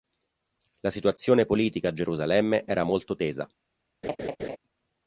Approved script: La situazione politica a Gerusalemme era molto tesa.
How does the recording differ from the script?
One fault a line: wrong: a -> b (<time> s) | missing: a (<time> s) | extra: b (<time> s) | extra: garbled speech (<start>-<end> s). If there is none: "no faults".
no faults